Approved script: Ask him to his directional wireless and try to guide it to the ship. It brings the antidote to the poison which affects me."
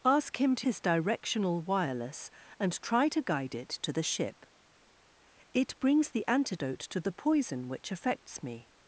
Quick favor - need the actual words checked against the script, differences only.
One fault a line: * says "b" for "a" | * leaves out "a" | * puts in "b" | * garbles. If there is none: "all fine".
all fine